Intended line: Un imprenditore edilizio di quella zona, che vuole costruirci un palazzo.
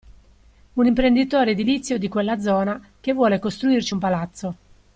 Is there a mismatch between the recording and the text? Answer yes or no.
no